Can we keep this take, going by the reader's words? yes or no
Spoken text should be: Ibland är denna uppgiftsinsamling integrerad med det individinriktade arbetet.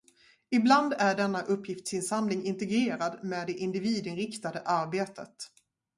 yes